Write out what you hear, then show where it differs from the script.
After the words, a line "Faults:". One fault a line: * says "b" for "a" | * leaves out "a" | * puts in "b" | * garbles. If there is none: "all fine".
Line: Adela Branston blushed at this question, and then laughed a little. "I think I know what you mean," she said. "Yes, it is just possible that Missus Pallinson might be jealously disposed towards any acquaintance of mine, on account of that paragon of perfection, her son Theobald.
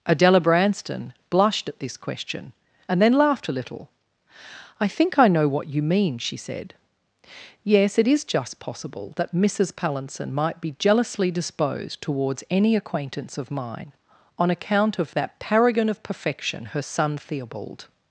Adela Branston blushed at this question, and then laughed a little. "I think I know what you mean," she said. "Yes, it is just possible that Missus Pallinson might be jealously disposed towards any acquaintance of mine, on account of that paragon of perfection, her son Theobald.
Faults:
all fine